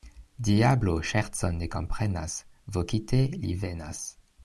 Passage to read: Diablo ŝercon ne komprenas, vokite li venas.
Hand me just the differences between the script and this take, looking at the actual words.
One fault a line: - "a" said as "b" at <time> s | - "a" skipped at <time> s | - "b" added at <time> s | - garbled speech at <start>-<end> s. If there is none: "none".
none